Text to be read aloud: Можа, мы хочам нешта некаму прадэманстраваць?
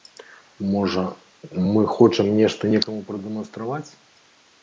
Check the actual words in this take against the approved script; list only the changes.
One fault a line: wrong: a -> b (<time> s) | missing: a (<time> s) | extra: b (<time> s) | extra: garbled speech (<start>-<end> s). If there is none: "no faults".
no faults